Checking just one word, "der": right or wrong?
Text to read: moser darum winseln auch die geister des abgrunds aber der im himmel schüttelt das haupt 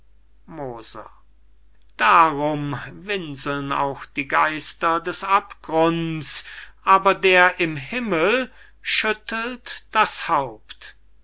right